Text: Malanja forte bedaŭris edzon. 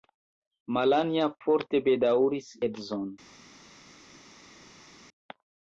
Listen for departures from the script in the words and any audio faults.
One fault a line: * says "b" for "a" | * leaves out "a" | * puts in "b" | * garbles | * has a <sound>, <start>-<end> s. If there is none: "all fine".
all fine